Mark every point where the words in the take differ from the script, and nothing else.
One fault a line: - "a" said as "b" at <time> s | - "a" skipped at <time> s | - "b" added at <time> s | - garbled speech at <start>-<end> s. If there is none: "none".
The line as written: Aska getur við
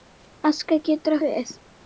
none